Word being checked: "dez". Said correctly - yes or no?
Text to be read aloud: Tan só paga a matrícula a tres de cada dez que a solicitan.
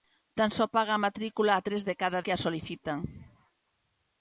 no